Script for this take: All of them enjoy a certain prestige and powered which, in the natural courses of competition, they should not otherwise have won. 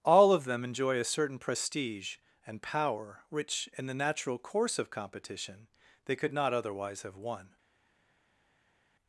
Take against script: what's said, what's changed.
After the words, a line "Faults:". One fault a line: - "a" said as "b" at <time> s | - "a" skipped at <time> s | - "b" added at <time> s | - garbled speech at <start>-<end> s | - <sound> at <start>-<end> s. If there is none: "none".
All of them enjoy a certain prestige and power which, in the natural course of competition, they could not otherwise have won.
Faults:
- "powered" said as "power" at 2.6 s
- "courses" said as "course" at 4.4 s
- "should" said as "could" at 6.2 s